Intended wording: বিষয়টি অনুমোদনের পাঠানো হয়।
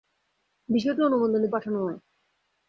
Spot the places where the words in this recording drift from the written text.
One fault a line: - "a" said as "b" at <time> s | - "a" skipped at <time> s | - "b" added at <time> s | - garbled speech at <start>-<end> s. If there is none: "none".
none